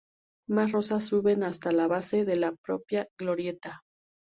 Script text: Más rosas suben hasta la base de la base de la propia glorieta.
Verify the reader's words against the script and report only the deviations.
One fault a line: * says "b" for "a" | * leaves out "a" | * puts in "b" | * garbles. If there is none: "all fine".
* leaves out "base de la"